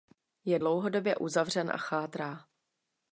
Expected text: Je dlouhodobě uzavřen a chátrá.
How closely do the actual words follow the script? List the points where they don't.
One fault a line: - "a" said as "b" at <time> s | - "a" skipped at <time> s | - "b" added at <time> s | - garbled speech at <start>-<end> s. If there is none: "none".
none